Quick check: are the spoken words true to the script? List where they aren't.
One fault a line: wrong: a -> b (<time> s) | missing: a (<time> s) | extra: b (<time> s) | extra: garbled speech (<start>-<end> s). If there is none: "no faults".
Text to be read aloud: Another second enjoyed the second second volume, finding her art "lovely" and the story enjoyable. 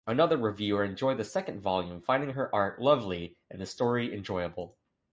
wrong: second -> reviewer (0.4 s)
missing: second (1.6 s)